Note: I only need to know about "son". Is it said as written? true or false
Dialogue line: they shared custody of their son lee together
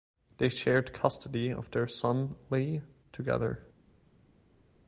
true